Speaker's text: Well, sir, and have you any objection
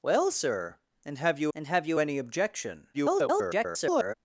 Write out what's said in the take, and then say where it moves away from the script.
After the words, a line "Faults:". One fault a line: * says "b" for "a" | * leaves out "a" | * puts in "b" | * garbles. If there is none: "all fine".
Well, sir, and have you and have you any objection [garbled]
Faults:
* puts in "and have you"
* garbles